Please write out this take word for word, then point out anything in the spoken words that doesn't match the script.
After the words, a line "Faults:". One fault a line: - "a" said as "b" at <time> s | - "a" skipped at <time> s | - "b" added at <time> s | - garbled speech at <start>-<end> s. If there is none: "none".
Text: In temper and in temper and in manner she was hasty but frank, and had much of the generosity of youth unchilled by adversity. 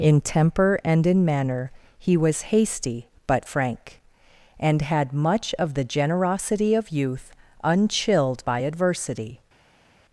In temper and in manner he was hasty but frank, and had much of the generosity of youth unchilled by adversity.
Faults:
- "temper and in" skipped at 1.2 s
- "she" said as "he" at 2.0 s